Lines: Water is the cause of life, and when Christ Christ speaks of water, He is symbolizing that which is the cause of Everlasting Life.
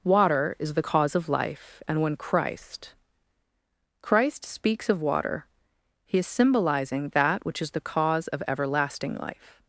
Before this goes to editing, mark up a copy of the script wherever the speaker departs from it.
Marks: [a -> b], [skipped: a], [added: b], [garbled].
Water is the cause of life, and when Christ Christ speaks of water, He is symbolizing that which is the cause of Everlasting Life.